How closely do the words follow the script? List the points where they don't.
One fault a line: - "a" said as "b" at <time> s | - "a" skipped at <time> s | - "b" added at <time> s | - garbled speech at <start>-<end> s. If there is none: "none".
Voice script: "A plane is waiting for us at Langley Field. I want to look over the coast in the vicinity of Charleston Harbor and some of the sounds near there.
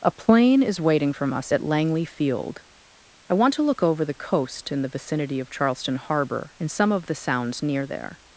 - "for" said as "from" at 1.1 s